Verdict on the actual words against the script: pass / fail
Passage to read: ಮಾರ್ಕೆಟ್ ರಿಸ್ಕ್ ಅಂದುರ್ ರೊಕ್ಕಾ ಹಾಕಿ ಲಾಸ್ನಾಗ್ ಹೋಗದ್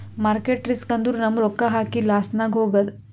fail